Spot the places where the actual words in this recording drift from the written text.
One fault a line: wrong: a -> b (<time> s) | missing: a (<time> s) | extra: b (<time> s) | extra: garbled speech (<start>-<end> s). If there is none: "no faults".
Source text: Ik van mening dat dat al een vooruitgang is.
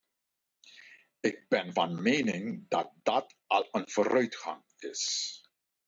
extra: ben (1.5 s)